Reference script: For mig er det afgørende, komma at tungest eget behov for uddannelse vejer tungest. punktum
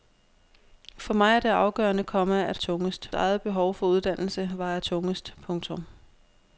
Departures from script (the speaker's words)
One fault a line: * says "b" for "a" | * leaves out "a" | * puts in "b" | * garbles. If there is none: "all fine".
all fine